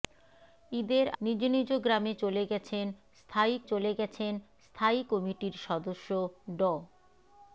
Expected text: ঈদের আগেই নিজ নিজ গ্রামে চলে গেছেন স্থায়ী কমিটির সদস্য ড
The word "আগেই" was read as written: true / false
false